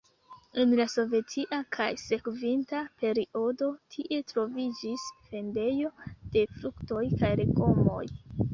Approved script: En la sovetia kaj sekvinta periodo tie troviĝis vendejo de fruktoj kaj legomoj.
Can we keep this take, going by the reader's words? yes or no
yes